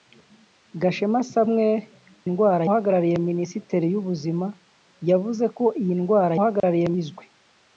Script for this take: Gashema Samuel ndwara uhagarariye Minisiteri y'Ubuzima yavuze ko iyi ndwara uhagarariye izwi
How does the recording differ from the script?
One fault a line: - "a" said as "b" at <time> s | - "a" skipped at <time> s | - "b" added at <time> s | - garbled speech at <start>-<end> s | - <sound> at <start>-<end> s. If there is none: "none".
- dropout at 6.6-6.6 s